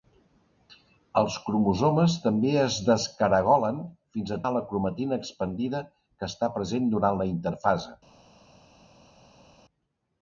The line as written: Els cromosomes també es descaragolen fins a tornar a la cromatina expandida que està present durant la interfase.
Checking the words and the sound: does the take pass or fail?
fail